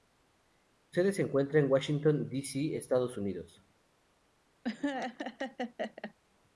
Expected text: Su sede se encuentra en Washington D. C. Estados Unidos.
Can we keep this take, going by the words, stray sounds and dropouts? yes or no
no